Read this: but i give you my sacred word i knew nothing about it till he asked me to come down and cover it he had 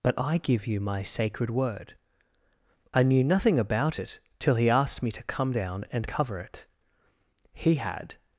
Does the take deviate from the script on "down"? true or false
false